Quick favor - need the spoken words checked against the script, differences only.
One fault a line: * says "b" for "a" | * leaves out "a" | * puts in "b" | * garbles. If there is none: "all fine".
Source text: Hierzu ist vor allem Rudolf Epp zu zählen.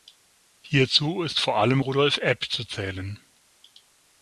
all fine